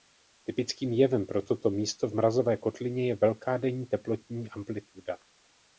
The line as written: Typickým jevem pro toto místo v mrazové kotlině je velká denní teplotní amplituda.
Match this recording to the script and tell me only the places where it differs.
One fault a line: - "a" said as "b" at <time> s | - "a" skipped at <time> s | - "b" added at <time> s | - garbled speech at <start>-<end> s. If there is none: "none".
none